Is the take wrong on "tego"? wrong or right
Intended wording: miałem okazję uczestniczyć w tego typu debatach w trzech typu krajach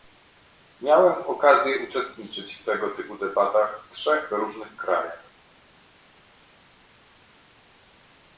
right